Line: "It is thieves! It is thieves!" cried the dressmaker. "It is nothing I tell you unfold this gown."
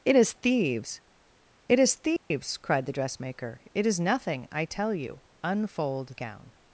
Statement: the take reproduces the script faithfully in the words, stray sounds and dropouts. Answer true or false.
false